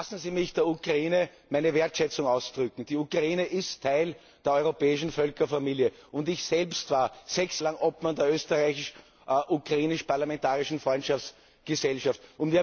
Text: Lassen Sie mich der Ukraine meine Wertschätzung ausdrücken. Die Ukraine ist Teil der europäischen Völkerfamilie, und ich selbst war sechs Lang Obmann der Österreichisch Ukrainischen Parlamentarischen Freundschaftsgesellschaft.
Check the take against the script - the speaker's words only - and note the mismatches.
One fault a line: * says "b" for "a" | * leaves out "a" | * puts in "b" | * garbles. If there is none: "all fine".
all fine